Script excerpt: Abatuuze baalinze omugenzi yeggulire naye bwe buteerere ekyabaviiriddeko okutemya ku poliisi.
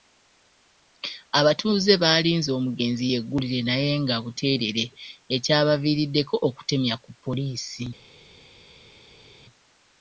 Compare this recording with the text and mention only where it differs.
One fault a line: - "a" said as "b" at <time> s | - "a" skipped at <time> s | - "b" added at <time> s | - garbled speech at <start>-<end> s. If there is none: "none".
- "bwe" said as "nga" at 4.0 s